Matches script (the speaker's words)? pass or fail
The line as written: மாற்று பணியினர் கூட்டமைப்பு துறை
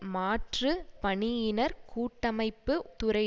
pass